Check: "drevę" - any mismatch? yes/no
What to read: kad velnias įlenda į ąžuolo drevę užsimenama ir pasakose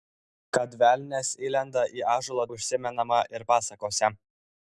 yes